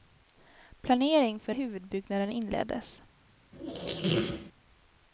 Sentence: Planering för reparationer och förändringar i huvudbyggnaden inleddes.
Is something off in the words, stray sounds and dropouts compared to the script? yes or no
yes